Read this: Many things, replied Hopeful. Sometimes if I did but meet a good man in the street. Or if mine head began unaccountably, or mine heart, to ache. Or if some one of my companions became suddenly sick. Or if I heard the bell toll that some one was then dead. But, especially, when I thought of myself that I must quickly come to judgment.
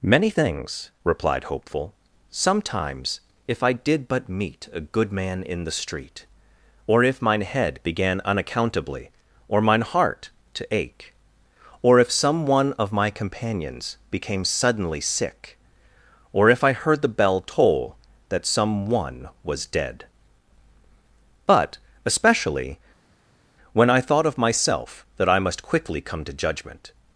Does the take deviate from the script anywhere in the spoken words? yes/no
yes